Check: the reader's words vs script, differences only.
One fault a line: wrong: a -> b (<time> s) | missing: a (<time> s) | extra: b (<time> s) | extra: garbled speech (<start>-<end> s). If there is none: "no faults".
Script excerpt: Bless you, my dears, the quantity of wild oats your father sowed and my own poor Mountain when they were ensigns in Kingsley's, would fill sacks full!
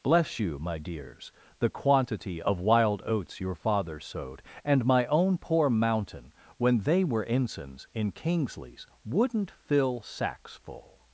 wrong: would -> wouldn't (9.0 s)